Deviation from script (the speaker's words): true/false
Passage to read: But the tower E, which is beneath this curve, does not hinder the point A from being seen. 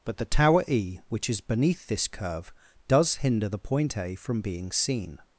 true